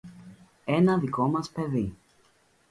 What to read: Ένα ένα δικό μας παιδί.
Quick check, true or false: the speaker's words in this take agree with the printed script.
false